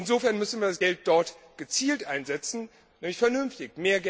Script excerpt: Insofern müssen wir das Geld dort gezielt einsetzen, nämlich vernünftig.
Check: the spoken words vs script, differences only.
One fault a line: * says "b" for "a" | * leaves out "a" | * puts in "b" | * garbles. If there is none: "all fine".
all fine